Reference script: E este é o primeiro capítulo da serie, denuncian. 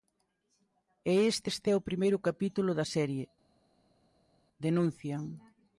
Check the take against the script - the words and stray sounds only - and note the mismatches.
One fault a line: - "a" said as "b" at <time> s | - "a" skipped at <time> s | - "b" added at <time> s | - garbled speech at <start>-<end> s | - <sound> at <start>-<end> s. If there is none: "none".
- "este" added at 1.5 s